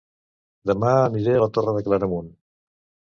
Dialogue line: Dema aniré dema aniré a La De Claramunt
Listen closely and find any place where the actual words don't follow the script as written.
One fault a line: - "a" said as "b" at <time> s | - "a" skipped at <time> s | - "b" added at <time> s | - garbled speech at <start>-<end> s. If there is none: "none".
- "dema aniré" skipped at 1.4 s
- "Torre" added at 1.6 s